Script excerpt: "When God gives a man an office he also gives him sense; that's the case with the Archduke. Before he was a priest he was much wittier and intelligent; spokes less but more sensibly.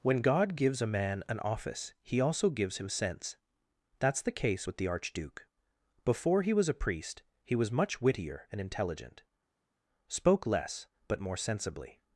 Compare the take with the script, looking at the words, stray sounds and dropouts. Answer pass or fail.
fail